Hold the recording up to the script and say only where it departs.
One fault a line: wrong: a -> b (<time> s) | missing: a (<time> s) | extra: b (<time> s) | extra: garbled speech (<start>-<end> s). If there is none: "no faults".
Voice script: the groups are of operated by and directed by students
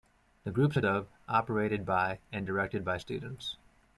no faults